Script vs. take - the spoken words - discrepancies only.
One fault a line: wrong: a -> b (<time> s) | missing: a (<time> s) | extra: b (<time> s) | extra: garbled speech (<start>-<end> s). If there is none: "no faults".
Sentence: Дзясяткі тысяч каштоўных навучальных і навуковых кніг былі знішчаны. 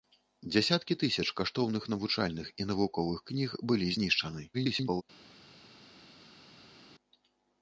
extra: garbled speech (4.5-5.0 s)